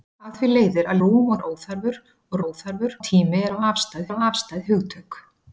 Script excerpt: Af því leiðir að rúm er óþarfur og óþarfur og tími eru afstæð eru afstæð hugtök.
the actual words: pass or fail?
pass